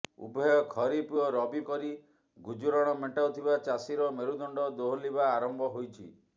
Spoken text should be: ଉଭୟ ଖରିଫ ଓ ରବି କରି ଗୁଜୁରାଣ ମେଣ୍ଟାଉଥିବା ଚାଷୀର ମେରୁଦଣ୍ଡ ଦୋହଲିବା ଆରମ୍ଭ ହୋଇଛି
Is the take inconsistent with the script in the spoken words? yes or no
no